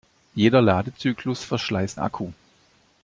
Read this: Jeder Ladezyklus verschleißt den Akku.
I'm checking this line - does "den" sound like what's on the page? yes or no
no